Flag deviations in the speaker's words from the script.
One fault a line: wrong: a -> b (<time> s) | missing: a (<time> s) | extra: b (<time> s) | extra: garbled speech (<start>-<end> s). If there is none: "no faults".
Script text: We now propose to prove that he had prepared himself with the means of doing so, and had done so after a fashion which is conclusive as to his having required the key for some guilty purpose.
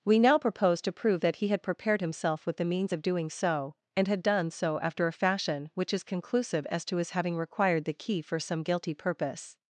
no faults